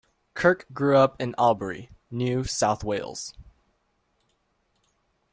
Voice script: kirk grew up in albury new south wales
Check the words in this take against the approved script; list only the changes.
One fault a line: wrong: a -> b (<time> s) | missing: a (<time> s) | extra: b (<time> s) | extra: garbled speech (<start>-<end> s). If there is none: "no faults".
no faults